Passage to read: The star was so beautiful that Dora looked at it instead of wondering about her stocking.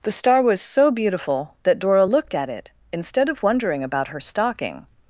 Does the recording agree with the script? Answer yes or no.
yes